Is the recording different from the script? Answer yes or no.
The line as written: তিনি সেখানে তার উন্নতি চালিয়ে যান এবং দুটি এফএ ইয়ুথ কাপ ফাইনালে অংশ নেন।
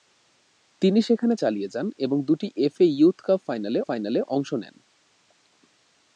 yes